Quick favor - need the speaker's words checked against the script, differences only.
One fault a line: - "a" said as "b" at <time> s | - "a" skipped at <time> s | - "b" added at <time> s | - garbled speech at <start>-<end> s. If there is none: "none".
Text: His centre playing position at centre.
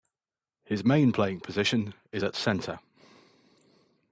- "centre" said as "main" at 0.8 s
- "is" added at 2.1 s